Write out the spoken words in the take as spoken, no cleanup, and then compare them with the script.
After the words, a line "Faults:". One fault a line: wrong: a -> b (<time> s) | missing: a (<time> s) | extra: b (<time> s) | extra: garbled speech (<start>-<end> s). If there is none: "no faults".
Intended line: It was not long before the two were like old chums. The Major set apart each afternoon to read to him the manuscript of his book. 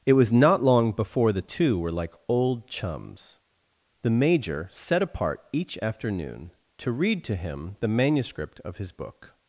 It was not long before the two were like old chums. The Major set apart each afternoon to read to him the manuscript of his book.
Faults:
no faults